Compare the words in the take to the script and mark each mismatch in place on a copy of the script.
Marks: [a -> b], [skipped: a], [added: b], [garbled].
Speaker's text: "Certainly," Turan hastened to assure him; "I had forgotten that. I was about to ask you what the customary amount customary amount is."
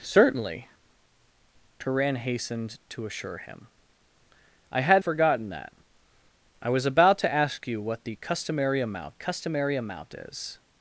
"Certainly," Turan hastened to assure him; "I had forgotten that. I was about to ask you what the customary amount customary amount is."